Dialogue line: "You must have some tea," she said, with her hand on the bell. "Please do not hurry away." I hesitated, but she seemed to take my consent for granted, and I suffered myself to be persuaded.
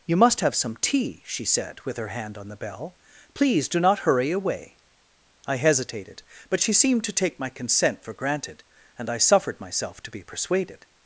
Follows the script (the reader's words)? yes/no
yes